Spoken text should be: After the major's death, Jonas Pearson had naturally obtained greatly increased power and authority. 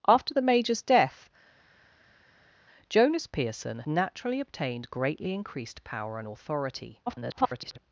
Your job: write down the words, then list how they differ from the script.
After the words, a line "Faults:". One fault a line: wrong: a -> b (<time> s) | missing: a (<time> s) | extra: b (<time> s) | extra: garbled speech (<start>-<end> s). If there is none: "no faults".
After the major's death, Jonas Pearson naturally obtained greatly increased power and authority. [garbled]
Faults:
missing: had (3.8 s)
extra: garbled speech (7.1-7.8 s)